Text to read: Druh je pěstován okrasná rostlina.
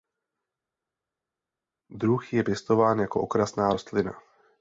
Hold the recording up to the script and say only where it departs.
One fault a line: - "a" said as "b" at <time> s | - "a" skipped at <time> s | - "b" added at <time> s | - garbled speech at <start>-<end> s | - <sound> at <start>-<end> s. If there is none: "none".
- "jako" added at 3.0 s